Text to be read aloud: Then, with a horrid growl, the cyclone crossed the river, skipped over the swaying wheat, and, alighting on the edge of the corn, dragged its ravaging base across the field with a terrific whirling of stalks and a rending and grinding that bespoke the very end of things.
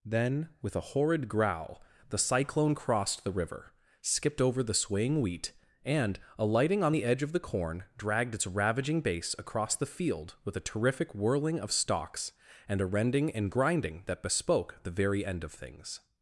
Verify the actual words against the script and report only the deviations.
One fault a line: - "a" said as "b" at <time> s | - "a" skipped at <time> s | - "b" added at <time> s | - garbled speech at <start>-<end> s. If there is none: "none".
none